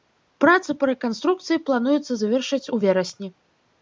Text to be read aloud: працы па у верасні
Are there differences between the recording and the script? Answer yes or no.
yes